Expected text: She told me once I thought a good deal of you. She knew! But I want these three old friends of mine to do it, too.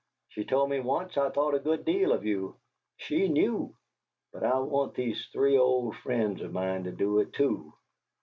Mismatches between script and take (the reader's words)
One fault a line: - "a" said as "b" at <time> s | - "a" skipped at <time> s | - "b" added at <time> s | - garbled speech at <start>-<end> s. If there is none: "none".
none